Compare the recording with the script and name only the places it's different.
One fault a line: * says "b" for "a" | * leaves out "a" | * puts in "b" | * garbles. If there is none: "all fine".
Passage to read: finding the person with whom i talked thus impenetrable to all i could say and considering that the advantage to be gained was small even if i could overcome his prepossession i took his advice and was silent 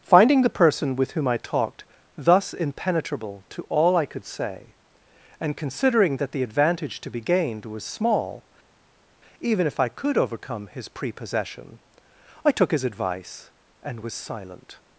all fine